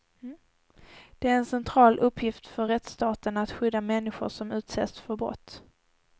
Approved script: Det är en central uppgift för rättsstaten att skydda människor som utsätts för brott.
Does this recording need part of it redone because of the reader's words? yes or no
no